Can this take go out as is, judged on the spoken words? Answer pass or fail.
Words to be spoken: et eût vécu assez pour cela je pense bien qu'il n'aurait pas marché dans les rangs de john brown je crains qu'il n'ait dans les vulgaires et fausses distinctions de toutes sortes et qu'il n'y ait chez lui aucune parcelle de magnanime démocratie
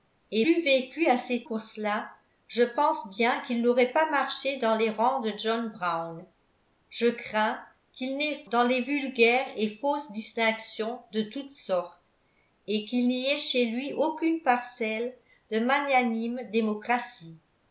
pass